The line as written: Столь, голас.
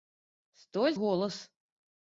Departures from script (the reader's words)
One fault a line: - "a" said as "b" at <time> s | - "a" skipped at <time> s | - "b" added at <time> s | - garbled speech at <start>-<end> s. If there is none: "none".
none